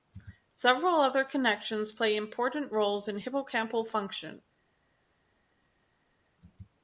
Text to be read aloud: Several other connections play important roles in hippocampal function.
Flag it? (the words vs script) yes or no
no